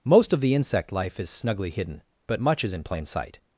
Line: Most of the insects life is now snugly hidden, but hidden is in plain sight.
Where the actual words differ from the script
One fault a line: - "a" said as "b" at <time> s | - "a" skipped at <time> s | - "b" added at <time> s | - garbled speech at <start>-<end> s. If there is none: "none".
- "insects" said as "insect" at 0.6 s
- "now" skipped at 1.3 s
- "hidden" said as "much" at 2.4 s